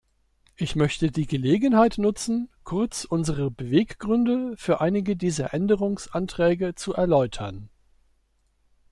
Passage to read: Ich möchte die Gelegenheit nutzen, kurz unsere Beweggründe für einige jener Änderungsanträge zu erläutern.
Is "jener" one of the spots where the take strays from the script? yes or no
yes